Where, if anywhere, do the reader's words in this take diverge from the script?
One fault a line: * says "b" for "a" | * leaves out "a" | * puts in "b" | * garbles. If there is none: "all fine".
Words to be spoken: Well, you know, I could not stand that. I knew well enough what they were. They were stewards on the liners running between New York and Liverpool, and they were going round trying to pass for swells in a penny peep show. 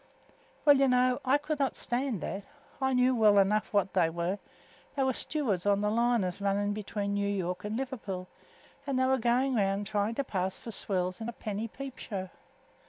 all fine